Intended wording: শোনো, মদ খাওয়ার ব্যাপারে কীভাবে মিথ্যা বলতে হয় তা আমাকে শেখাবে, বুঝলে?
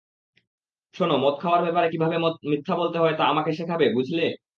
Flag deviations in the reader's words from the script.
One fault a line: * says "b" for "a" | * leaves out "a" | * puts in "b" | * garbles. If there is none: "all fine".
all fine